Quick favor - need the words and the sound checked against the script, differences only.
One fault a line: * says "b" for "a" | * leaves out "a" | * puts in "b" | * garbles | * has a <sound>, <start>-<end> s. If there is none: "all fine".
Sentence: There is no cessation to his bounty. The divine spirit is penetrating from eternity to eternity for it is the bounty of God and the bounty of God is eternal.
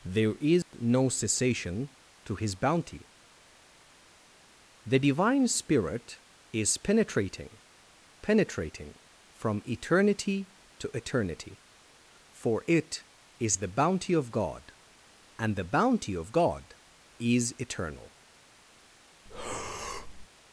* has a dropout, 0.6-0.7 s
* puts in "penetrating"
* has a breath, 19.3-20.3 s